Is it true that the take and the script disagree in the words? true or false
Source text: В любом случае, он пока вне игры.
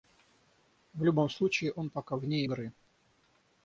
false